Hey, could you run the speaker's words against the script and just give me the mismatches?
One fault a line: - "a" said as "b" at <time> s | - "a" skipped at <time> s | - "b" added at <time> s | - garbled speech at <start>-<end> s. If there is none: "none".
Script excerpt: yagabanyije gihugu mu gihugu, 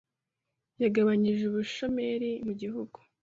- "gihugu" said as "ubushomeri" at 1.5 s